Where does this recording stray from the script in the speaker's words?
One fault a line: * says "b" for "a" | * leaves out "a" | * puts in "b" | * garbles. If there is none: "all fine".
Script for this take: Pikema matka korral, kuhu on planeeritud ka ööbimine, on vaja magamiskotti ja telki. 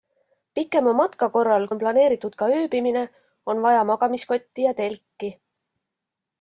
* leaves out "kuhu"